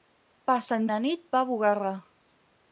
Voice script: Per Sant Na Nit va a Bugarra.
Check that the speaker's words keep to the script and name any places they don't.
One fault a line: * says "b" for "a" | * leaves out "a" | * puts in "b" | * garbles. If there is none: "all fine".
all fine